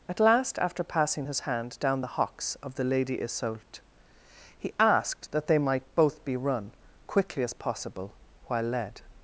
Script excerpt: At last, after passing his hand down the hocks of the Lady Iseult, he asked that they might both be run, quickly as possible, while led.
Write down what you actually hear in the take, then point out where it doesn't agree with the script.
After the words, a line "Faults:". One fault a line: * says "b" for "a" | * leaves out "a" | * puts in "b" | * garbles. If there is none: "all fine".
At last, after passing his hand down the hocks of the Lady Iseult, he asked that they might both be run, quickly as possible, while led.
Faults:
all fine